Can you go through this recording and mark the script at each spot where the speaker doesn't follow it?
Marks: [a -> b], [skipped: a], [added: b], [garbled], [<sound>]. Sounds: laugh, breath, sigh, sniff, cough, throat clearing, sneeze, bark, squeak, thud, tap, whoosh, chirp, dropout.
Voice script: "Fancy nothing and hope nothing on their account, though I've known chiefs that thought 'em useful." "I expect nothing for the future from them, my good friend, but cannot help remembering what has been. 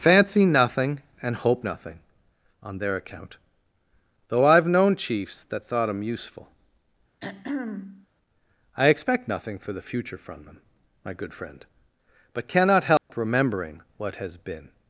"Fancy nothing and hope nothing on their account, though I've known chiefs that thought 'em useful." [throat clearing] "I expect nothing for the future from them, my good friend, but cannot help [dropout] remembering what has been.